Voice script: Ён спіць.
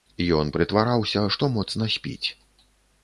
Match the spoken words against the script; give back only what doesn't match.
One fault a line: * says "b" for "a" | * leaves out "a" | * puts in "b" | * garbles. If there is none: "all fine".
* puts in "прытвараўся што моцна"